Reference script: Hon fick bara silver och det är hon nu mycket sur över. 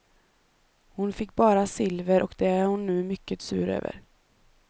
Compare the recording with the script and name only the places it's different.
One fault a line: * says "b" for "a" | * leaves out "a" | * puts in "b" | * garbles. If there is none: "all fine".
all fine